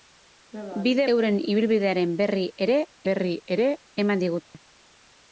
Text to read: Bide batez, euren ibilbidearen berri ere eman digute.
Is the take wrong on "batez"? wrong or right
wrong